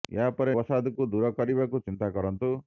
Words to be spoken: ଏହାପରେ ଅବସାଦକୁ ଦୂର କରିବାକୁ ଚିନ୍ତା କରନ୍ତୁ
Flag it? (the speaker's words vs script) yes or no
no